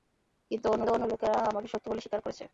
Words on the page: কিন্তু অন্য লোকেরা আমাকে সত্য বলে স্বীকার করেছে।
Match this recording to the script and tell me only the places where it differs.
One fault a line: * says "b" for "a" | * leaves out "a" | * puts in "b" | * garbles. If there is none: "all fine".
* puts in "অন্য"